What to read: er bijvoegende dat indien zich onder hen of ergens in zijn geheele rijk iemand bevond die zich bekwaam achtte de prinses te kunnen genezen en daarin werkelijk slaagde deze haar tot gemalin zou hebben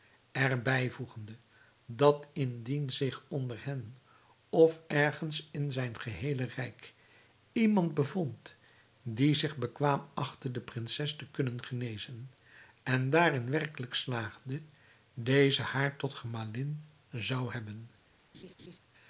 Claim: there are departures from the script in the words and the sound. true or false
true